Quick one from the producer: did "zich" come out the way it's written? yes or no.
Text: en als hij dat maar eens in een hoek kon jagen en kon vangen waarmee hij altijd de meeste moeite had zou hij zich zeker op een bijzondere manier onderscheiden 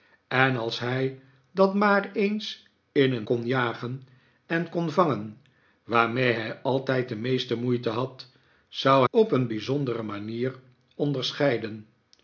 no